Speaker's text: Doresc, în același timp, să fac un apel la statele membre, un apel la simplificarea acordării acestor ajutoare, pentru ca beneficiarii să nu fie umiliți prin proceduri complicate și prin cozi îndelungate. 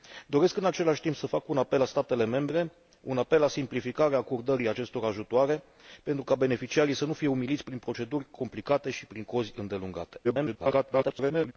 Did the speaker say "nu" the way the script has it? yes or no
yes